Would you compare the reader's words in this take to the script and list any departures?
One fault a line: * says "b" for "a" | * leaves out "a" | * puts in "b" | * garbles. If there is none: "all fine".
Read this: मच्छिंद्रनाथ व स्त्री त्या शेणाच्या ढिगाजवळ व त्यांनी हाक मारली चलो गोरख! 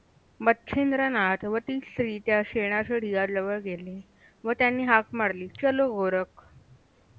* puts in "ती"
* puts in "गेले"